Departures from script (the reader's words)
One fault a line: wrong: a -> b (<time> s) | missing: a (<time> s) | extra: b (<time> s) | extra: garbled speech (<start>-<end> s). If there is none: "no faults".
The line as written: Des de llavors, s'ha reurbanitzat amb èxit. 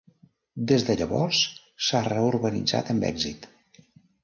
no faults